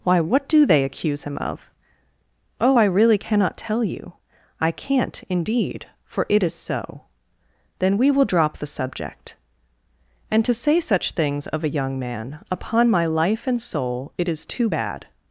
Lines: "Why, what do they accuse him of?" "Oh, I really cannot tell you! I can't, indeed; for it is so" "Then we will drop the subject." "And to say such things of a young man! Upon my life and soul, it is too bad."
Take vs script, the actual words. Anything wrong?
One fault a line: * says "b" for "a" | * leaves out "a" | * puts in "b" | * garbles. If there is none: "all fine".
all fine